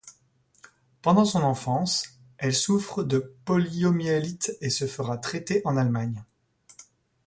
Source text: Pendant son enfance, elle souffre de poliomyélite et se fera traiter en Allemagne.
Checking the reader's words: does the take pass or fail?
pass